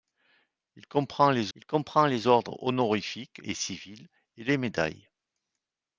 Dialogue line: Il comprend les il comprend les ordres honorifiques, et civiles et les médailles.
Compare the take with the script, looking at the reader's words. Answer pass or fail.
pass